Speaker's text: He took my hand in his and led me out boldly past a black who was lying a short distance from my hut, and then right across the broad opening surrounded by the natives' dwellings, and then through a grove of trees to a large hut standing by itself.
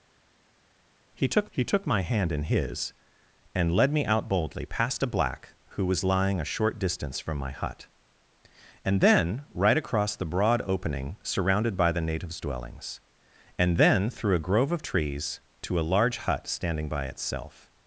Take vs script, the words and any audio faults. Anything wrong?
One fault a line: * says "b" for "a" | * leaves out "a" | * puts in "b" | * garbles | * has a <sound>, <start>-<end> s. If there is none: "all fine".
* puts in "he took"